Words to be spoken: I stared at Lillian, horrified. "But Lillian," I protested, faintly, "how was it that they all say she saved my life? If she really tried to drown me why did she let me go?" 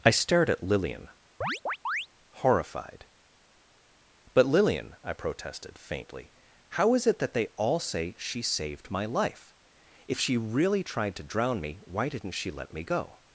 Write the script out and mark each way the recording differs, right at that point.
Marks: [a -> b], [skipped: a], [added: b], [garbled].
I stared at Lillian, horrified. "But Lillian," I protested, faintly, "how [was -> is] it that they all say she saved my life? If she really tried to drown me why [did -> didn't] she let me go?"